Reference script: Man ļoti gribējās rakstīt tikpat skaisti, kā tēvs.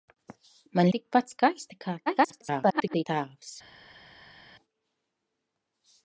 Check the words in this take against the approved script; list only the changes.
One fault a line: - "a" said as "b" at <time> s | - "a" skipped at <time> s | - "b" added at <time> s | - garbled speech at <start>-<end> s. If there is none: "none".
- "ļoti gribējās rakstīt" skipped at 0.9 s
- garbled speech at 2.1-3.1 s